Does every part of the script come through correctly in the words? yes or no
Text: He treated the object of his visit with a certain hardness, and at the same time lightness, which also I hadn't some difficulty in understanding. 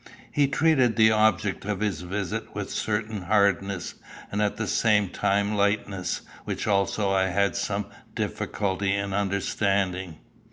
no